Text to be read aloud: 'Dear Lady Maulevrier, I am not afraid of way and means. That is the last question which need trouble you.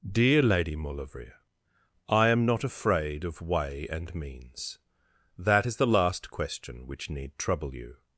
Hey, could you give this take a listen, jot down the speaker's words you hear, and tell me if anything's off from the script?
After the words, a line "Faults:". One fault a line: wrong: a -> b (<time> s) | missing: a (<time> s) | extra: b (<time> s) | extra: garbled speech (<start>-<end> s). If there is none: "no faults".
'Dear Lady Maulevrier, I am not afraid of way and means. That is the last question which need trouble you.
Faults:
no faults